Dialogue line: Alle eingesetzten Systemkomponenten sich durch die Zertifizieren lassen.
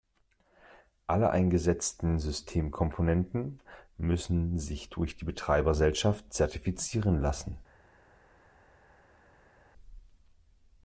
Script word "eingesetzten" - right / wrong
right